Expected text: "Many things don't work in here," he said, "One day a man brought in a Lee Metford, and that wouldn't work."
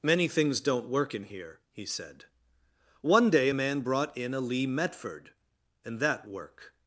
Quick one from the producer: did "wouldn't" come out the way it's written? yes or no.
no